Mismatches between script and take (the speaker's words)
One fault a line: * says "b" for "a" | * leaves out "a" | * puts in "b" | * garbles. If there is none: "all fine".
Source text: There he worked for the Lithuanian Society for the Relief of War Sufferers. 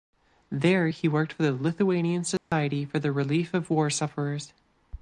all fine